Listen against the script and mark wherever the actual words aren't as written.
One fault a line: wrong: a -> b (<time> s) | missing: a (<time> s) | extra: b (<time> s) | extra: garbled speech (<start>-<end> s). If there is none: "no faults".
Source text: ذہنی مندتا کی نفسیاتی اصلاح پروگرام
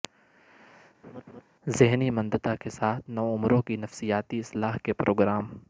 extra: کے ساتھ نوعمروں (2.6 s)
extra: کے (4.8 s)